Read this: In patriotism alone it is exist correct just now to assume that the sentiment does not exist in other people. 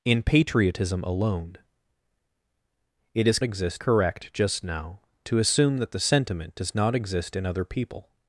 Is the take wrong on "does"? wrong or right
right